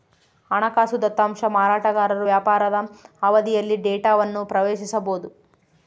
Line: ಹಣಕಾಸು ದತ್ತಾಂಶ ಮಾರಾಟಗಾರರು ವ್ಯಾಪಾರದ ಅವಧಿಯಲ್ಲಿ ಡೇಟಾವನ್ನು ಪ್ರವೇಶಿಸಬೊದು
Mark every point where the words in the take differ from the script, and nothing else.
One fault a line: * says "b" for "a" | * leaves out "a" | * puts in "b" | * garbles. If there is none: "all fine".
all fine